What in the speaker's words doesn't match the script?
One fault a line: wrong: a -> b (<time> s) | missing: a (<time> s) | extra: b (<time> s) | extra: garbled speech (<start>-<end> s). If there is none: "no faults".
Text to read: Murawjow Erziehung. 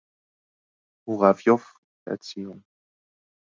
no faults